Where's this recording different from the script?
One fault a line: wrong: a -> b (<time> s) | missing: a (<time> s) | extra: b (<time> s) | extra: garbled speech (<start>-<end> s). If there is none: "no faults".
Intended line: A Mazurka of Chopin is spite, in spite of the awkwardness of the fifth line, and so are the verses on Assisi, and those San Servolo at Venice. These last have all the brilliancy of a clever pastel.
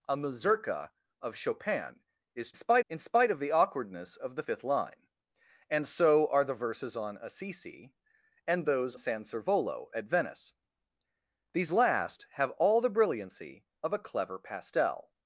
no faults